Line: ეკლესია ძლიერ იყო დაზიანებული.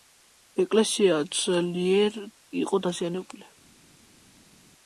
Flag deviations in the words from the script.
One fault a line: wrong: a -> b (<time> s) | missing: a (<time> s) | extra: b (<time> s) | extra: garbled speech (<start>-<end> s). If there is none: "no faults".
no faults